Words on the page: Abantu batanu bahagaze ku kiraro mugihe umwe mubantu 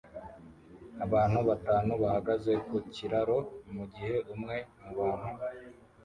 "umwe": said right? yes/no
yes